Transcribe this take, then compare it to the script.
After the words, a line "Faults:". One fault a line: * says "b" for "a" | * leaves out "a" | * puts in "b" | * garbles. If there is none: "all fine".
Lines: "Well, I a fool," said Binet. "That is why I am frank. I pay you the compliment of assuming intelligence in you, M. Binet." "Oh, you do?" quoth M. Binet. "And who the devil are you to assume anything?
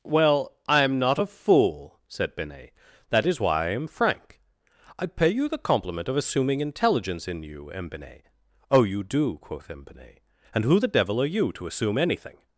"Well, I am not a fool," said Binet. "That is why I am frank. I pay you the compliment of assuming intelligence in you, M. Binet." "Oh, you do?" quoth M. Binet. "And who the devil are you to assume anything?
Faults:
* puts in "am not"